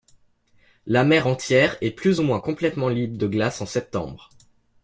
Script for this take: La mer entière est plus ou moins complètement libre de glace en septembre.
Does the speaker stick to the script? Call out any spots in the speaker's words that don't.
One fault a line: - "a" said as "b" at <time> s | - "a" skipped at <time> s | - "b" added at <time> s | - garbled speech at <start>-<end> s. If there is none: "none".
none